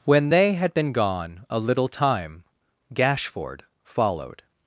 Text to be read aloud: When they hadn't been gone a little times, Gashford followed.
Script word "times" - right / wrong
wrong